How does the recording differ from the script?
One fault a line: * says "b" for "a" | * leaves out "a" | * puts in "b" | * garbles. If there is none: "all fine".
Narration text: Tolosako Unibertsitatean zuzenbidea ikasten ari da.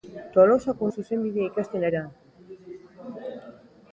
* leaves out "Unibertsitatean"
* leaves out "ari"